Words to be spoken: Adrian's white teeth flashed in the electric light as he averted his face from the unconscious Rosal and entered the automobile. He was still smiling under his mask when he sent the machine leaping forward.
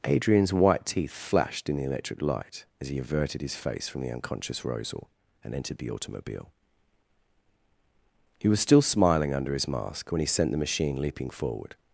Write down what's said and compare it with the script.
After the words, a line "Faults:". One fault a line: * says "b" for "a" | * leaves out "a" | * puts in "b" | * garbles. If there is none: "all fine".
Adrian's white teeth flashed in the electric light as he averted his face from the unconscious Rosal and entered the automobile. He was still smiling under his mask when he sent the machine leaping forward.
Faults:
all fine